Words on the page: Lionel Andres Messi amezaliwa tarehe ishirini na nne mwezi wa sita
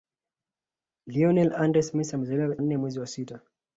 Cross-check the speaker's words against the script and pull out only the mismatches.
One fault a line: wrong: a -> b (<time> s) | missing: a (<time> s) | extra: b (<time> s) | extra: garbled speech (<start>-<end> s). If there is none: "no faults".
missing: tarehe ishirini na (2.6 s)